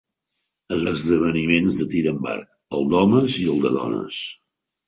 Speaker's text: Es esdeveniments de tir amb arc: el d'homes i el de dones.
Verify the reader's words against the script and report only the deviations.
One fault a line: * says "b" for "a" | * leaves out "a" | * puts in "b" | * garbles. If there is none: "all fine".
all fine